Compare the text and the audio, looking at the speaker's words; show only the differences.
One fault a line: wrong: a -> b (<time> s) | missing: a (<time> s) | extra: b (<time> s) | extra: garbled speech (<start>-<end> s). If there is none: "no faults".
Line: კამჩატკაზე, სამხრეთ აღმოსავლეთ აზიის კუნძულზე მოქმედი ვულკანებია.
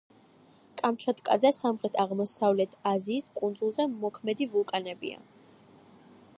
no faults